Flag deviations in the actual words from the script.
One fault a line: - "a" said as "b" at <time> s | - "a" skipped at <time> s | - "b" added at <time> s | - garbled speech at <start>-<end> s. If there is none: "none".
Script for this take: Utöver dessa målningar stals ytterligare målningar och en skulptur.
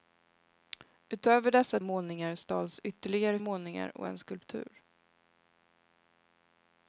none